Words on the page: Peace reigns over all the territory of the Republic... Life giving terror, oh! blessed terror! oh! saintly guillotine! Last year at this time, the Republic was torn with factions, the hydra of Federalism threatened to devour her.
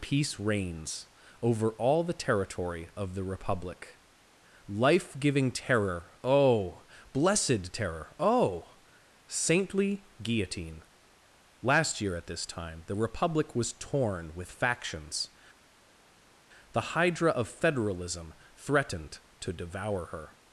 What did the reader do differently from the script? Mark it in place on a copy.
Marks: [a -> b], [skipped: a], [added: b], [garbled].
Peace reigns over all the territory of the Republic... Life giving terror, oh! blessed terror! oh! saintly guillotine! Last year at this time, the Republic was torn with factions, the hydra of Federalism threatened to devour her.